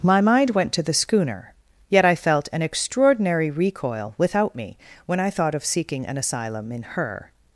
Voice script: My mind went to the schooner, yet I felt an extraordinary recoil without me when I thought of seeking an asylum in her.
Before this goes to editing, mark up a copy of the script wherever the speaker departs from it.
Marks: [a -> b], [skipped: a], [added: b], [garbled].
My mind went to the schooner, yet I felt an extraordinary recoil without me when I thought of seeking an asylum in her.